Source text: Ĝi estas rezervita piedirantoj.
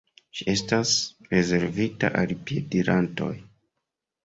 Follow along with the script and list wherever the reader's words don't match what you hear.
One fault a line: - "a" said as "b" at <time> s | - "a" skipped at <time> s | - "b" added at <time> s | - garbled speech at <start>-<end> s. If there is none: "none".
- "al" added at 2.2 s